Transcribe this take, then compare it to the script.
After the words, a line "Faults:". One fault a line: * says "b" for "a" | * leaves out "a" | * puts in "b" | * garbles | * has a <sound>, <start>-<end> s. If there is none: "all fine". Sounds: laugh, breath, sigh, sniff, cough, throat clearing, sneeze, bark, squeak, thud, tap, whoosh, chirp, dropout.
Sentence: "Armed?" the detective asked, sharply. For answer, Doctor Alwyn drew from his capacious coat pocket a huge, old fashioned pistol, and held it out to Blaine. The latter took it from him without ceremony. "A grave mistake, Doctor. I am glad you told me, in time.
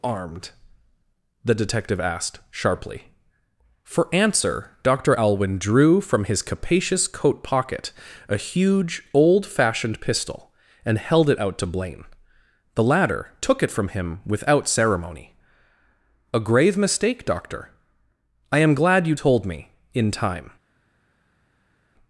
"Armed?" the detective asked, sharply. For answer, Doctor Alwyn drew from his capacious coat pocket a huge, old fashioned pistol, and held it out to Blaine. The latter took it from him without ceremony. "A grave mistake, Doctor. I am glad you told me, in time.
Faults:
all fine